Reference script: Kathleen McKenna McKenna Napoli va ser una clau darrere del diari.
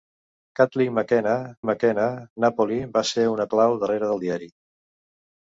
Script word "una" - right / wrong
right